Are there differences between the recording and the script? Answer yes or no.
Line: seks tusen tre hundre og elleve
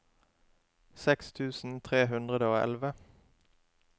no